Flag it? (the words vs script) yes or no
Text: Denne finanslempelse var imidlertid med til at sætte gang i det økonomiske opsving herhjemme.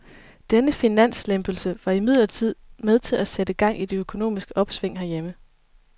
no